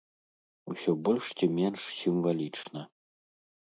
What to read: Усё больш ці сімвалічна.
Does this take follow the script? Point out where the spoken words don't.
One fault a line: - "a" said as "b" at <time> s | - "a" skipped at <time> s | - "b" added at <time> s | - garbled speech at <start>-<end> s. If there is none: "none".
- "менш" added at 1.6 s